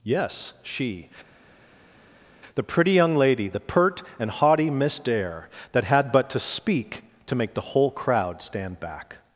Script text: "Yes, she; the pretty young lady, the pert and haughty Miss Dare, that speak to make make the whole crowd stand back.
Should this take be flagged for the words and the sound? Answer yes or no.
yes